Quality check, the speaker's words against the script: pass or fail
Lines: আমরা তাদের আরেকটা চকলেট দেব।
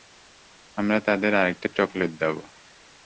pass